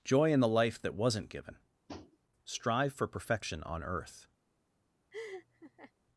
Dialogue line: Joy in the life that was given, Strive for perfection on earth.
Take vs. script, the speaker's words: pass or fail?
fail